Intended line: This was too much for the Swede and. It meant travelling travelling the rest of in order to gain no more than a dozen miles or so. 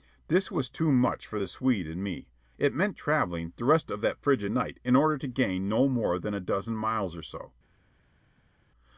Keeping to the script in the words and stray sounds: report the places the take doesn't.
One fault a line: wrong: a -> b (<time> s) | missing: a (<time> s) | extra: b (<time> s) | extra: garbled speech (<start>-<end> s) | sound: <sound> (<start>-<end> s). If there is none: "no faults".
extra: me (2.0 s)
missing: travelling (3.5 s)
extra: that frigid night (4.0 s)